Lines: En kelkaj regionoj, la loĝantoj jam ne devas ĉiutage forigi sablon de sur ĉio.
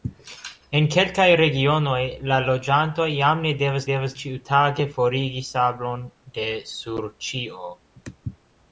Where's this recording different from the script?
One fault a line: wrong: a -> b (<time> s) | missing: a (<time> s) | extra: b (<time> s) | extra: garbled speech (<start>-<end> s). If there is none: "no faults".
extra: devas (3.9 s)